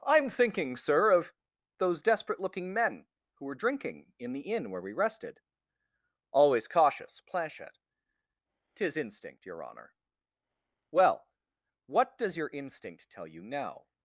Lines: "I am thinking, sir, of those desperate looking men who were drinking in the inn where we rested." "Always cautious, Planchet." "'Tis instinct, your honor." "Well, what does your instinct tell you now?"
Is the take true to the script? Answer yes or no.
yes